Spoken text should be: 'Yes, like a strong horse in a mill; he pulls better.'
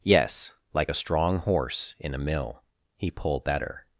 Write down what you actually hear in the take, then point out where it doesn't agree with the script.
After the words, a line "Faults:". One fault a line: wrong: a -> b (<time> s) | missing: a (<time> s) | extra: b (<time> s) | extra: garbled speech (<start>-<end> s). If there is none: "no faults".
'Yes, like a strong horse in a mill; he pull better.'
Faults:
wrong: pulls -> pull (3.1 s)